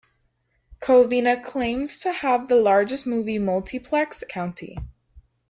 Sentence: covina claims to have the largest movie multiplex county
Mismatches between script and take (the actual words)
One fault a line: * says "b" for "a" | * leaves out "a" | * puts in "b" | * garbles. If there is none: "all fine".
all fine